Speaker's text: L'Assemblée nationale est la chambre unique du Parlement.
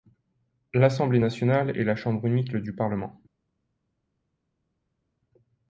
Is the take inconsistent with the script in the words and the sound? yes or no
no